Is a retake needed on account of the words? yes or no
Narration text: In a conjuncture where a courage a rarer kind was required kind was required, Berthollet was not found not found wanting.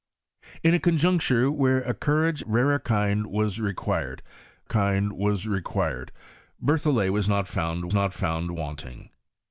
no